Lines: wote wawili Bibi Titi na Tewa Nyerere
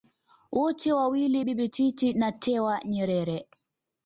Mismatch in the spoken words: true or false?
false